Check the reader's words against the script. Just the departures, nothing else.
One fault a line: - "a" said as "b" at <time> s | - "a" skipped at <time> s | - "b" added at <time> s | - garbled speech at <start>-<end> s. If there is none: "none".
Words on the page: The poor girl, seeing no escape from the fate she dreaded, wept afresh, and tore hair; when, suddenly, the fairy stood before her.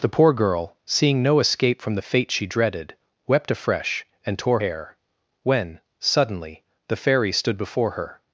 none